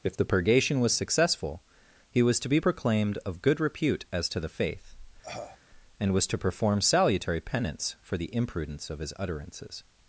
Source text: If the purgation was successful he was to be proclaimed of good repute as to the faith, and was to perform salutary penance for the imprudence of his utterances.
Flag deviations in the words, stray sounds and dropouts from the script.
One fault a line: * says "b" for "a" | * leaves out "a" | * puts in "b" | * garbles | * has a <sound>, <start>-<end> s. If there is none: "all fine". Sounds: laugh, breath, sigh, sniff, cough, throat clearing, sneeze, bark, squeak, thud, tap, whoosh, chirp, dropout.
* has a cough, 5.2-5.6 s